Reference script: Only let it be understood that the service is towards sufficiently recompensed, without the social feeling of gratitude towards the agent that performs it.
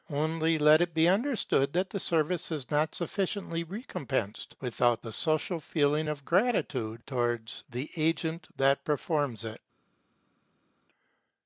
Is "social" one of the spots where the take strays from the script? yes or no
no